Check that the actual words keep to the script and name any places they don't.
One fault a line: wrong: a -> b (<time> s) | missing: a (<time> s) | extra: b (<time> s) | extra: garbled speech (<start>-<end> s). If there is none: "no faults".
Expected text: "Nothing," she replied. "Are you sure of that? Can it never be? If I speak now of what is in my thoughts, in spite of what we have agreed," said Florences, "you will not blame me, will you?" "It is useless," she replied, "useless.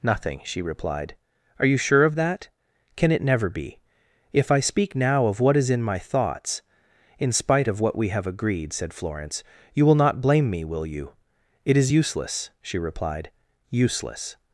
wrong: Florences -> Florence (8.9 s)